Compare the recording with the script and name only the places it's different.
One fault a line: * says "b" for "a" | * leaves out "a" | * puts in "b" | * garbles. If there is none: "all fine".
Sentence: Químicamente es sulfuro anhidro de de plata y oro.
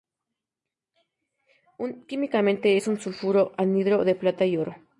* puts in "un"
* leaves out "de"